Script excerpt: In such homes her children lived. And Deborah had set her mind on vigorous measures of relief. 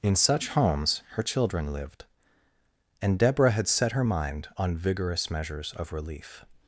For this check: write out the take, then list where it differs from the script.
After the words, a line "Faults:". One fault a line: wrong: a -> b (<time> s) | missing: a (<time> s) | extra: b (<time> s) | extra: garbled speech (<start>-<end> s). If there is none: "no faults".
In such homes her children lived. And Deborah had set her mind on vigorous measures of relief.
Faults:
no faults